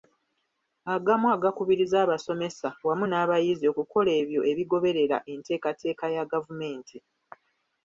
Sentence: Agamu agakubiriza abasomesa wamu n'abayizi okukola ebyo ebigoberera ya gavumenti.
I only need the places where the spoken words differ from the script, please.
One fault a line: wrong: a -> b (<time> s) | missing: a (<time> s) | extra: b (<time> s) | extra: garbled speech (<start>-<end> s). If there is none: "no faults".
extra: enteekateeka (5.3 s)